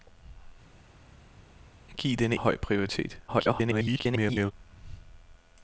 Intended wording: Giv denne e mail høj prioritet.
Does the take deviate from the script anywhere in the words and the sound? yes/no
yes